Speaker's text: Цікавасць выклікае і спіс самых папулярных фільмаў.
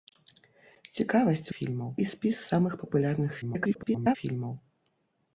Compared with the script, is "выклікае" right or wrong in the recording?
wrong